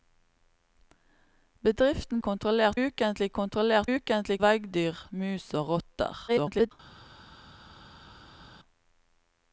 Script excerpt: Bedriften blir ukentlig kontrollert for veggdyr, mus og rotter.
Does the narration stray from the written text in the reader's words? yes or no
yes